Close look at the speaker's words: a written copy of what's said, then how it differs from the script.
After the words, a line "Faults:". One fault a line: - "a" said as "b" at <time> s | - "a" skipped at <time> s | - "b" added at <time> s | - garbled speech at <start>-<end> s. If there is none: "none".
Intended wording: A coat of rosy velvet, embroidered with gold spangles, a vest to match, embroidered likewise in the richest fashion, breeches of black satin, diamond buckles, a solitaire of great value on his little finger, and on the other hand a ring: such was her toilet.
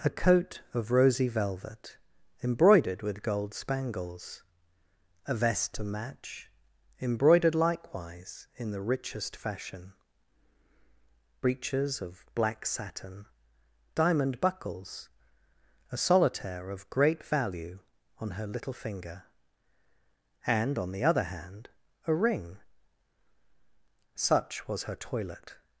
A coat of rosy velvet, embroidered with gold spangles, a vest to match, embroidered likewise in the richest fashion, breeches of black satin, diamond buckles, a solitaire of great value on her little finger, and on the other hand a ring: such was her toilet.
Faults:
- "his" said as "her" at 18.3 s